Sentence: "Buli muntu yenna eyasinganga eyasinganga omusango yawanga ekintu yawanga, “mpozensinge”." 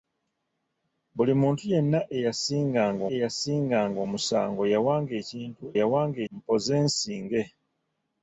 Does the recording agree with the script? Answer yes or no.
yes